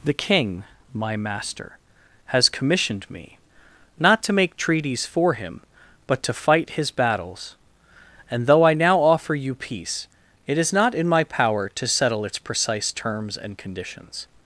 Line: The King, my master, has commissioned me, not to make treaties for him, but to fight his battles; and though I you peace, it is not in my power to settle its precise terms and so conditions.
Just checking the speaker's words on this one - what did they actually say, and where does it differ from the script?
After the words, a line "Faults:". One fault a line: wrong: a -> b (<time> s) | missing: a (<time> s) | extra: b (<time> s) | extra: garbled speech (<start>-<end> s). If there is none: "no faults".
The King, my master, has commissioned me, not to make treaties for him, but to fight his battles; and though I now offer you peace, it is not in my power to settle its precise terms and conditions.
Faults:
extra: now offer (8.7 s)
missing: so (13.6 s)